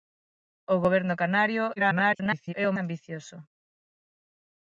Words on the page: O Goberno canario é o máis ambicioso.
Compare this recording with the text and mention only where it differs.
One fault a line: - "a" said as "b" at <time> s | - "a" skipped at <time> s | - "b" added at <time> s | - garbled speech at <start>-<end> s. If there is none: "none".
- garbled speech at 1.8-2.5 s
- "máis" skipped at 2.8 s